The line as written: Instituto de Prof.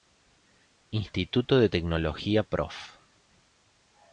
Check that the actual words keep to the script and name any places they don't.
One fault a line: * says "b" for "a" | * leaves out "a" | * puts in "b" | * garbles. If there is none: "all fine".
* puts in "Tecnología"